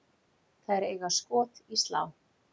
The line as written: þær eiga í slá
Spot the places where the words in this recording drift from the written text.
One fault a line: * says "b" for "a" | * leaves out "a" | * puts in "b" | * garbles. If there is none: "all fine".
* puts in "skot"